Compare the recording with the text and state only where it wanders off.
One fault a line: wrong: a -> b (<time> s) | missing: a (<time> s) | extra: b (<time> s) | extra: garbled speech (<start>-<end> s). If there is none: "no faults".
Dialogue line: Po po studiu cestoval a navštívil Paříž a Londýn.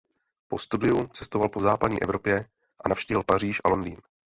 extra: studiu cestoval (0.6 s)
wrong: studiu cestoval -> západní Evropě (1.6 s)